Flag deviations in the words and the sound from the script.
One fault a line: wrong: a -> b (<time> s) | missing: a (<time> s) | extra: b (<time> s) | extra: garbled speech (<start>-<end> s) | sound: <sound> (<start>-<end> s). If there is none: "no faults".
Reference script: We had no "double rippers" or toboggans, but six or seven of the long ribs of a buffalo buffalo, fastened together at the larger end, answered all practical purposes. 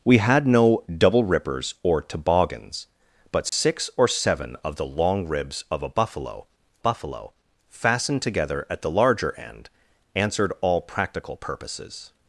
sound: dropout (3.5-3.5 s)